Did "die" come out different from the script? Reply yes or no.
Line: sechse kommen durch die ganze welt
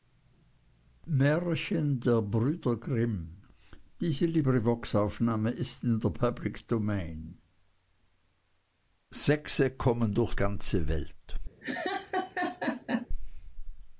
yes